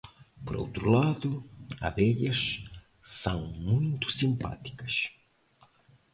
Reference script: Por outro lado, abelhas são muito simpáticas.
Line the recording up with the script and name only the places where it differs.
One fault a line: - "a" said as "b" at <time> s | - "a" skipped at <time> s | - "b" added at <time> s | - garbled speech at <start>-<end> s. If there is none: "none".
none